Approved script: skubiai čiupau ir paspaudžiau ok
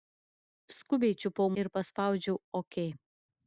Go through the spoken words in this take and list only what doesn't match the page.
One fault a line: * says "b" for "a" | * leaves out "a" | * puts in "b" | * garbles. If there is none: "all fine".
all fine